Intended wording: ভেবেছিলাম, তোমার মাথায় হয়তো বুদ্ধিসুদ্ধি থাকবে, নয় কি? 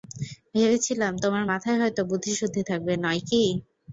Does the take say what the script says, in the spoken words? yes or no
yes